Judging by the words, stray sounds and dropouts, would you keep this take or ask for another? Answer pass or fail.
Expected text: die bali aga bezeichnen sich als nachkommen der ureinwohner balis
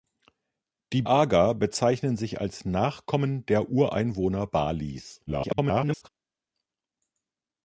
fail